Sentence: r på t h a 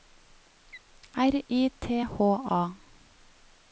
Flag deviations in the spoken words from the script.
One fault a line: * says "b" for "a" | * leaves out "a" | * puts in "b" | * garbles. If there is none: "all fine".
* says "i" for "på"